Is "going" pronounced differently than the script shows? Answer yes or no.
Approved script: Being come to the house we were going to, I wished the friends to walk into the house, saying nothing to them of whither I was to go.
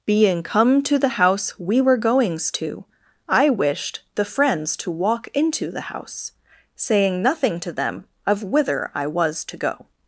yes